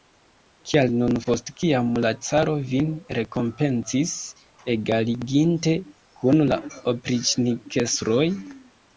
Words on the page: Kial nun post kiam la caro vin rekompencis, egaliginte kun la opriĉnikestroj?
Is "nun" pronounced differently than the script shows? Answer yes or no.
no